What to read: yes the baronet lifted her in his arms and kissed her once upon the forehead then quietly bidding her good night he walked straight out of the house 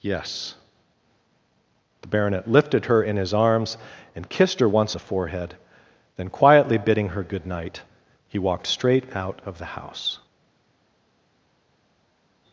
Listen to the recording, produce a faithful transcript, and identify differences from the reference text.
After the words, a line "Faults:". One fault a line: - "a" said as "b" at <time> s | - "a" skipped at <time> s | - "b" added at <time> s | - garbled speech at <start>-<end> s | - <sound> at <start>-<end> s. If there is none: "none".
yes the baronet lifted her in his arms and kissed her once the forehead then quietly bidding her good night he walked straight out of the house
Faults:
- "upon" skipped at 4.9 s